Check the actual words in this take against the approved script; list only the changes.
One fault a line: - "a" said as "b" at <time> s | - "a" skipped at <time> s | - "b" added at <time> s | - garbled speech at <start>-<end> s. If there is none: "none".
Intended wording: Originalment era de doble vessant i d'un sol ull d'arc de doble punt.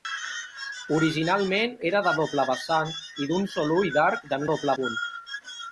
none